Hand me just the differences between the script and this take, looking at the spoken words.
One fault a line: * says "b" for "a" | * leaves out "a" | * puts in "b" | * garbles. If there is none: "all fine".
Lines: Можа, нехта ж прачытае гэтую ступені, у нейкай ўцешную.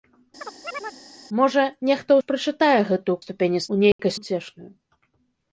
all fine